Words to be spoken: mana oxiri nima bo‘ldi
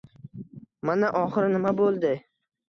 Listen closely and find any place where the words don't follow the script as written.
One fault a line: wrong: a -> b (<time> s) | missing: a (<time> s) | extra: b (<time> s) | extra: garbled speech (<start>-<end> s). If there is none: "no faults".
no faults